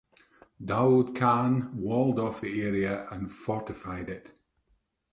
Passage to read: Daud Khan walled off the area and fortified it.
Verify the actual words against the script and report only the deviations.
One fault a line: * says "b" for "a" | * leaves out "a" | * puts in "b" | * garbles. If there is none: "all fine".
all fine